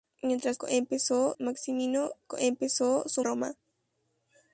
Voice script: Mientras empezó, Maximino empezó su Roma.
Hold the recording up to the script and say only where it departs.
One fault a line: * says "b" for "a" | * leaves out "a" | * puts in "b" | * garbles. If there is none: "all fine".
all fine